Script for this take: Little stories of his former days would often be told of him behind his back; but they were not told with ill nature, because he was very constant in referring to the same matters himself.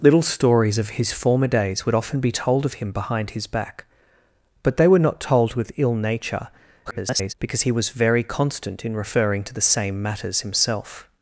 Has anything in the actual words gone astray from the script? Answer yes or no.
yes